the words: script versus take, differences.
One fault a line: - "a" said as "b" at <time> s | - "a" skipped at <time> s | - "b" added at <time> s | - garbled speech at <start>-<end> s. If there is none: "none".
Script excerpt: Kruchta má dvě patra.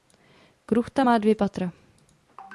none